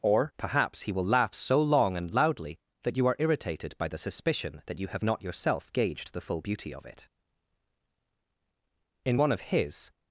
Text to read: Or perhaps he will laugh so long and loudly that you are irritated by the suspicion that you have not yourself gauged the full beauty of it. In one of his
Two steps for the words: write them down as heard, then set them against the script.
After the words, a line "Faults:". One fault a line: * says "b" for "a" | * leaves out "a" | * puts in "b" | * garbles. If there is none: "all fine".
Or perhaps he will laugh so long and loudly that you are irritated by the suspicion that you have not yourself gauged the full beauty of it. In one of his
Faults:
all fine